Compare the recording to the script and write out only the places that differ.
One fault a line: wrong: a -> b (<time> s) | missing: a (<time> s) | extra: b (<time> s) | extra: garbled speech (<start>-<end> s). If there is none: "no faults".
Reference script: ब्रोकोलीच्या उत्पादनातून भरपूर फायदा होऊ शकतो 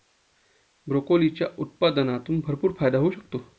no faults